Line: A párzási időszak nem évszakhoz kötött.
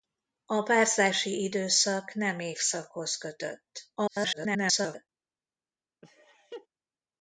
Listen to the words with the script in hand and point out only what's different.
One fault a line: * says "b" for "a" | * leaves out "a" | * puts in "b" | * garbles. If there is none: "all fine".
* garbles